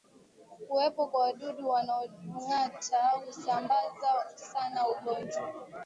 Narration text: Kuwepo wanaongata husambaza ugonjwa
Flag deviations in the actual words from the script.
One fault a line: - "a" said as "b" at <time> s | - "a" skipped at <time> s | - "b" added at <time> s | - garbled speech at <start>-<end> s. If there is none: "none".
- "kwa wadudu" added at 1.1 s
- "sana" added at 4.4 s